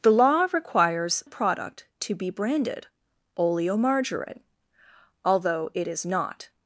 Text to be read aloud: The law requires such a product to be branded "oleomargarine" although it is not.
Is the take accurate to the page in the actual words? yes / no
no